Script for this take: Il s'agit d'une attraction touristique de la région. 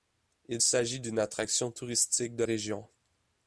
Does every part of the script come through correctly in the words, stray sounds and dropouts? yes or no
no